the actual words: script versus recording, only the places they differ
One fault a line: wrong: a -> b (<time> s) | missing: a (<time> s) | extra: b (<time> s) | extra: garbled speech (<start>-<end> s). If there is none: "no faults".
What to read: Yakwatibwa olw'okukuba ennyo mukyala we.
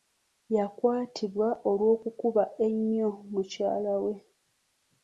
no faults